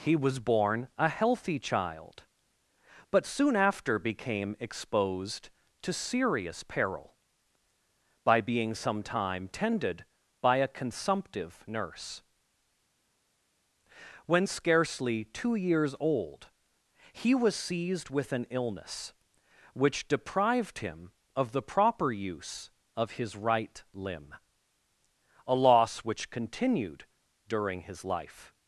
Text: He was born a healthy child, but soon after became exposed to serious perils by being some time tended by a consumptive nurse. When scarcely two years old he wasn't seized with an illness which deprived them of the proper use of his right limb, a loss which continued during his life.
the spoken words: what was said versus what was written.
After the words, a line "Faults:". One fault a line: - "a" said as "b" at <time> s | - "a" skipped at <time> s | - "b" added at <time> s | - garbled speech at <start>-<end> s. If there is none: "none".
He was born a healthy child, but soon after became exposed to serious peril by being some time tended by a consumptive nurse. When scarcely two years old he was seized with an illness which deprived him of the proper use of his right limb, a loss which continued during his life.
Faults:
- "perils" said as "peril" at 6.6 s
- "wasn't" said as "was" at 17.3 s
- "them" said as "him" at 20.8 s